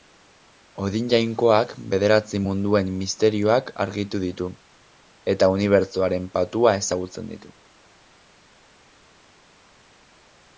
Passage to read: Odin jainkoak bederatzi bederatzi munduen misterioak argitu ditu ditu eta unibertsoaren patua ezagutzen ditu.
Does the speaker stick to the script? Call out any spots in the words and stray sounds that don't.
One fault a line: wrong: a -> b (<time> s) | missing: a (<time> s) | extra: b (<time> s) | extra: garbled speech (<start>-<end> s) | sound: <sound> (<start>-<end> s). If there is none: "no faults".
missing: bederatzi (2.4 s)
missing: ditu (4.5 s)